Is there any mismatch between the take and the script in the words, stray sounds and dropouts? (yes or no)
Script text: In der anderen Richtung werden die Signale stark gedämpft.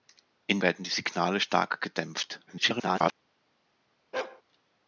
yes